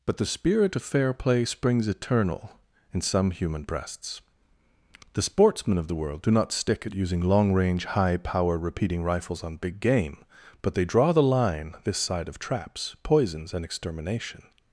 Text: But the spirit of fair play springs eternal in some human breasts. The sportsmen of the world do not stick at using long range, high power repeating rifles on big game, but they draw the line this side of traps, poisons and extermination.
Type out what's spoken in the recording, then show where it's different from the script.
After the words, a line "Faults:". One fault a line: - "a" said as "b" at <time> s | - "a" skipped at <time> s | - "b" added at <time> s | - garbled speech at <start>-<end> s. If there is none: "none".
But the spirit of fair play springs eternal in some human breasts. The sportsmen of the world do not stick at using long range, high power repeating rifles on big game, but they draw the line this side of traps, poisons and extermination.
Faults:
none